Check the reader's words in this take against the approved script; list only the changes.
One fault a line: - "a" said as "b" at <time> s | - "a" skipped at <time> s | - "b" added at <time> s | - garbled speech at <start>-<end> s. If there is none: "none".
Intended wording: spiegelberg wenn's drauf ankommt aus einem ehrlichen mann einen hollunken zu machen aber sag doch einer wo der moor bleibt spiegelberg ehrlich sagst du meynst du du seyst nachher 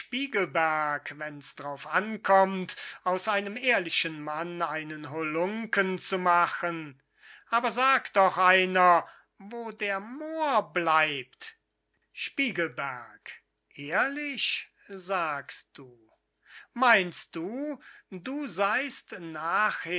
none